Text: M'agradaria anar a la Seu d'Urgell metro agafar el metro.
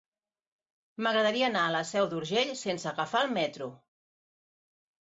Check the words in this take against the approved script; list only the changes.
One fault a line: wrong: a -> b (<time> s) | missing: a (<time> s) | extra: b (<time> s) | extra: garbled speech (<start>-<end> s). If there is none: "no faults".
wrong: metro -> sense (2.6 s)